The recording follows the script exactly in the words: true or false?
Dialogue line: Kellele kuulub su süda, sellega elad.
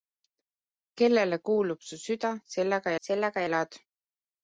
false